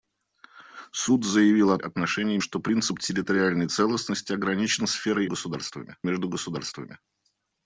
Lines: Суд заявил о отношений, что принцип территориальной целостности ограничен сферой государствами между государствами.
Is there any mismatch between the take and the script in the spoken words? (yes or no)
no